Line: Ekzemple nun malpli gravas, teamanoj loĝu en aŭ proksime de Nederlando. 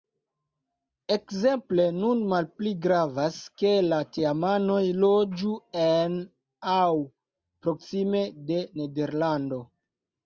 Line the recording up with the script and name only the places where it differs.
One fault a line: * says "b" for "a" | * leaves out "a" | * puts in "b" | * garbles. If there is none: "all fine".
* puts in "ke la"